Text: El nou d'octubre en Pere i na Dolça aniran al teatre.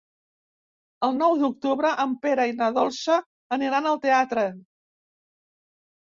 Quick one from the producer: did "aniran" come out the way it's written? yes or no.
yes